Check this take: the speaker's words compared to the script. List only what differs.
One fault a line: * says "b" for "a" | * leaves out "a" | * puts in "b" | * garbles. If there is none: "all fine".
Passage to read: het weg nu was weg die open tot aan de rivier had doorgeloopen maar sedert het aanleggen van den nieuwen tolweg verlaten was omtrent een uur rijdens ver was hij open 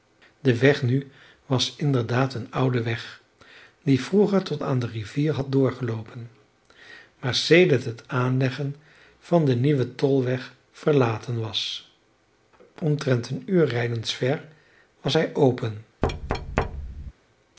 * says "de" for "het"
* puts in "inderdaad een oude"
* says "vroeger" for "open"